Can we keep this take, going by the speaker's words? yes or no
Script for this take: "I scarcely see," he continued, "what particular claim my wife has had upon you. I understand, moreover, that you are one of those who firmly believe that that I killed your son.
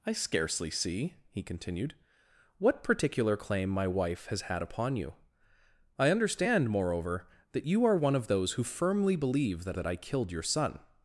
yes